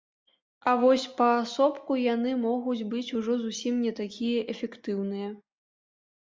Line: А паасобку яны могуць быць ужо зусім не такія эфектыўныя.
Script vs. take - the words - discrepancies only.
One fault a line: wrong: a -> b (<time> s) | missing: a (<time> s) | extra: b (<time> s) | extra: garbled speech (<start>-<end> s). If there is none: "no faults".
extra: вось (0.8 s)